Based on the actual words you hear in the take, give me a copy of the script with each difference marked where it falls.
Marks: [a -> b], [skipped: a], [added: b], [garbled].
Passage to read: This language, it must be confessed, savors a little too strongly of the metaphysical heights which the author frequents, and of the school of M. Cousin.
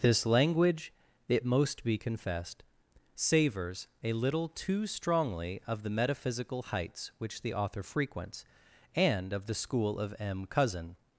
This language, it [must -> most] be confessed, savors a little too strongly of the metaphysical heights which the author frequents, and of the school of M. Cousin.